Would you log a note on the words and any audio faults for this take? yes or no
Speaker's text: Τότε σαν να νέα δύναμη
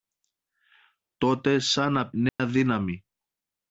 yes